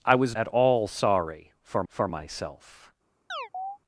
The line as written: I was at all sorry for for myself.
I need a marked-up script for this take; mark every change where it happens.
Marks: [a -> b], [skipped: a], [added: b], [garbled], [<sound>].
I was at all sorry for for myself. [chirp]